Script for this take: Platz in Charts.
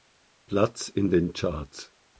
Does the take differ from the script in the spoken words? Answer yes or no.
yes